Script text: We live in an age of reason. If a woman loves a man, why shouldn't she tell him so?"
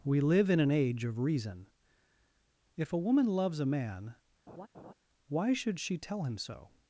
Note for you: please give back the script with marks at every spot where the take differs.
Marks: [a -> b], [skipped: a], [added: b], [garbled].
We live in an age of reason. If a woman loves a man, why [shouldn't -> should] she tell him so?"